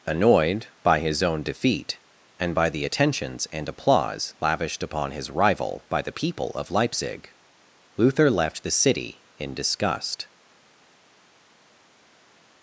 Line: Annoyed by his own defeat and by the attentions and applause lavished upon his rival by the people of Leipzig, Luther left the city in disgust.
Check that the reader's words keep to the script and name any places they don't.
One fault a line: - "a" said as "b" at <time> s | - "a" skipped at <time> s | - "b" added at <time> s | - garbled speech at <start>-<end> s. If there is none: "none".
none